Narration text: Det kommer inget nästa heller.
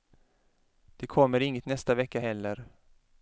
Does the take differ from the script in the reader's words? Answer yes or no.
yes